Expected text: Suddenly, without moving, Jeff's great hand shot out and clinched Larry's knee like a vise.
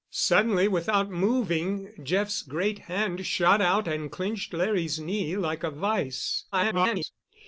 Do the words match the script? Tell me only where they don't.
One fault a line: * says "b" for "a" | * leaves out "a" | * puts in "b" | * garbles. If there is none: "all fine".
* garbles